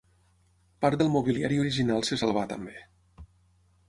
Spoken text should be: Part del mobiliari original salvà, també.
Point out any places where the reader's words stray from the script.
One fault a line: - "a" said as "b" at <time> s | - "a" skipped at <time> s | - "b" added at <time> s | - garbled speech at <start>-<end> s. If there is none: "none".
- "se" added at 2.1 s